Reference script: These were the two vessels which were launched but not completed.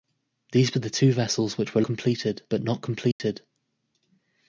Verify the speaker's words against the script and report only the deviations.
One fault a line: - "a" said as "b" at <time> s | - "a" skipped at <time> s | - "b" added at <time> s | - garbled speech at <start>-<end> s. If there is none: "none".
- "launched" said as "completed" at 1.8 s